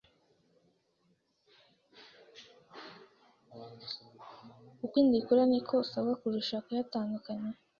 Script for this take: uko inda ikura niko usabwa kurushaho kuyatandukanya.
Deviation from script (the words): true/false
false